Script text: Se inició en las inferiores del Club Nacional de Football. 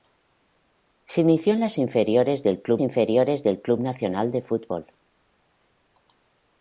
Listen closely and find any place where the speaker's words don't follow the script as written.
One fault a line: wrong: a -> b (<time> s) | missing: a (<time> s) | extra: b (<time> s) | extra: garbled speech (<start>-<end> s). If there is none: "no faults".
extra: inferiores del Club (2.8 s)